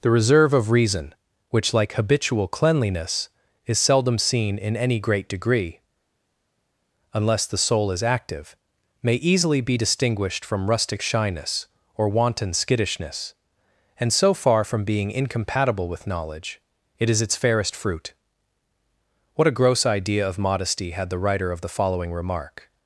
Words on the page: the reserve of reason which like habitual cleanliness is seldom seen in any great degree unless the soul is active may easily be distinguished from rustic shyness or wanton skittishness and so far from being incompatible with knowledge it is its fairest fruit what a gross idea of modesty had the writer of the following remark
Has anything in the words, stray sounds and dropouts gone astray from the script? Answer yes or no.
no